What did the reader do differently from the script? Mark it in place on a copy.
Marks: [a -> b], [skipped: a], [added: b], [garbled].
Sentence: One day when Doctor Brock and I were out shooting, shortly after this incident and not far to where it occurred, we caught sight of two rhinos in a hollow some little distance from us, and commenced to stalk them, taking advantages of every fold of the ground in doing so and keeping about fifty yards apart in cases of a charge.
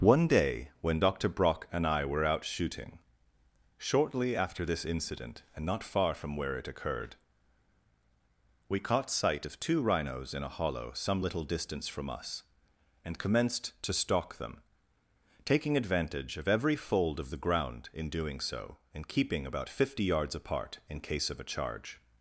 One day when Doctor Brock and I were out shooting, shortly after this incident and not far [to -> from] where it occurred, we caught sight of two rhinos in a hollow some little distance from us, and commenced to stalk them, taking [advantages -> advantage] of every fold of the ground in doing so and keeping about fifty yards apart in [cases -> case] of a charge.